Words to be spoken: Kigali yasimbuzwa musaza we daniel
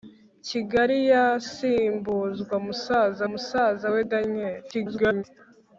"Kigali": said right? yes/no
yes